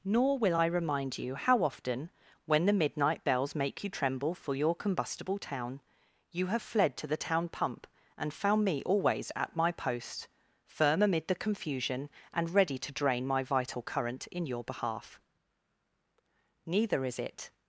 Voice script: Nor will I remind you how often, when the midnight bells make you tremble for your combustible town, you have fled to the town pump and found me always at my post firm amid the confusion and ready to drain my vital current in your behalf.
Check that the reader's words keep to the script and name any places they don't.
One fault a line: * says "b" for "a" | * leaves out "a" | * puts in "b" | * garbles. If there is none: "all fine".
* puts in "Neither is it"